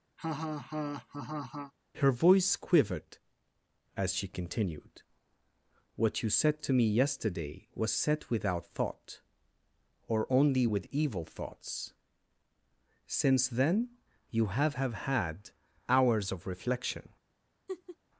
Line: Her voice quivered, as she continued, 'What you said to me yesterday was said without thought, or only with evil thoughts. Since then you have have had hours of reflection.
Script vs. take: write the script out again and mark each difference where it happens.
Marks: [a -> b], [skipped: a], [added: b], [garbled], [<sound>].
[laugh] Her voice quivered, as she continued, 'What you said to me yesterday was said without thought, or only with evil thoughts. Since then you have have had hours of reflection. [laugh]